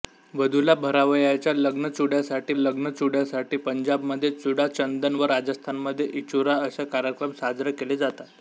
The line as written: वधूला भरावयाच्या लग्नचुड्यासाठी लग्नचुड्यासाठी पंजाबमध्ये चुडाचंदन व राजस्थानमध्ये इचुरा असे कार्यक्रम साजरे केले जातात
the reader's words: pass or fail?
pass